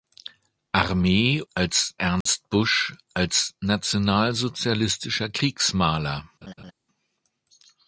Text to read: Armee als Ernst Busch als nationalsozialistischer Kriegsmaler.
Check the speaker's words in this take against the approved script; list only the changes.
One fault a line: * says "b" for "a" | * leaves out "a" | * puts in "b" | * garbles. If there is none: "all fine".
all fine